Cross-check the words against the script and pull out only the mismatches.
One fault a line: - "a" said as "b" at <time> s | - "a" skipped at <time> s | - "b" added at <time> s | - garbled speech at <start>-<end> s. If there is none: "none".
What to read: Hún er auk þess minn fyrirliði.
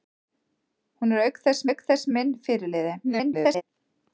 - "auk þess" added at 1.7 s
- garbled speech at 3.0-3.6 s